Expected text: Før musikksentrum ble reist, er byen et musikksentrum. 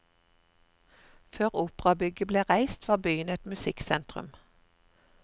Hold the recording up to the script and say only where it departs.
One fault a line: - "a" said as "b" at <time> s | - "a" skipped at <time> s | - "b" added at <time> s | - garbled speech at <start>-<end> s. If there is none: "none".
- "musikksentrum" said as "operabygget" at 1.6 s
- "er" said as "var" at 2.9 s